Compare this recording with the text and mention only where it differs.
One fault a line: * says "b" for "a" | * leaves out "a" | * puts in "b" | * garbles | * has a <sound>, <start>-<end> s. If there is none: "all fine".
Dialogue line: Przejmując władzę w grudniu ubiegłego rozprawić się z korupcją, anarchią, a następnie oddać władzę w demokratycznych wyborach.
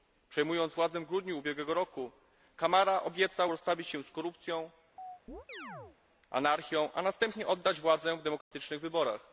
* puts in "roku Camara obiecał"
* has a chirp, 5.0-6.0 s
* has a dropout, 8.4-8.5 s